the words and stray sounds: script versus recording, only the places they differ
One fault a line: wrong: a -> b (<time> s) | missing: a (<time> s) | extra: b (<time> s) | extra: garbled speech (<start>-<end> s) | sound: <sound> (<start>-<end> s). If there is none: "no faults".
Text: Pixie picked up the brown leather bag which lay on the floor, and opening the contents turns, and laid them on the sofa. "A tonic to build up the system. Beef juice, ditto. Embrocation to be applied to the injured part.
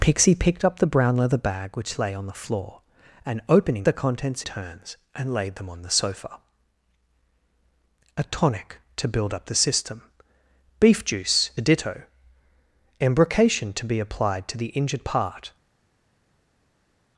no faults